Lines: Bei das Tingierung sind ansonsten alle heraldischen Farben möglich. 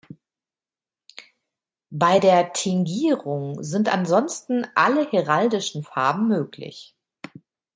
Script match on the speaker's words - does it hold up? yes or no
no